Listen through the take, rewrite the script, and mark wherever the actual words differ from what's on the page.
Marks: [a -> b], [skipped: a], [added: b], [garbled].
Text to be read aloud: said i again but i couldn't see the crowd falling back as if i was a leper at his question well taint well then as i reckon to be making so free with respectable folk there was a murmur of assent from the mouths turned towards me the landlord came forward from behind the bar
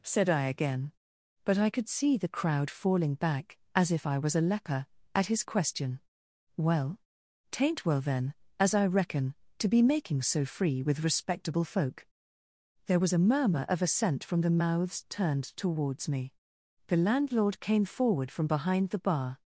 said i again but i [couldn't -> could] see the crowd falling back as if i was a leper at his question well taint well then as i reckon to be making so free with respectable folk there was a murmur of assent from the mouths turned towards me the landlord came forward from behind the bar